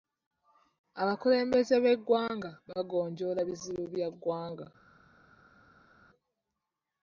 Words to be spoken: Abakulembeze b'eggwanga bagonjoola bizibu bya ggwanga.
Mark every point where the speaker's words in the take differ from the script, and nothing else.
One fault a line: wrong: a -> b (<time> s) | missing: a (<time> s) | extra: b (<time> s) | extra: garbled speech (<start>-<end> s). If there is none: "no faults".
no faults